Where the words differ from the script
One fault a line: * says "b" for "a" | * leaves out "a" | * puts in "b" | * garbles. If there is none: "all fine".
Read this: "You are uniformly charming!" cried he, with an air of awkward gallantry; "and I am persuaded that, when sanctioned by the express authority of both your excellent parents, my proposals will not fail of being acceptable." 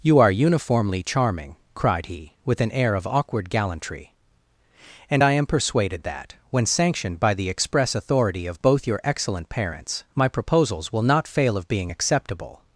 all fine